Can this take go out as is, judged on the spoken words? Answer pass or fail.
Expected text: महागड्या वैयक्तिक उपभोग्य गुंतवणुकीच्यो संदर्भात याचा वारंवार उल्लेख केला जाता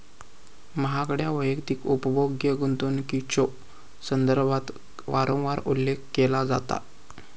fail